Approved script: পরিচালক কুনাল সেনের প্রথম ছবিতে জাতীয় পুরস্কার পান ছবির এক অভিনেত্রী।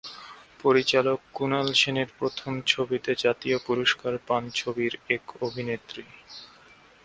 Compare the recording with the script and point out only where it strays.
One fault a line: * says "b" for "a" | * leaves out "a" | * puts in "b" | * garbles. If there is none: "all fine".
all fine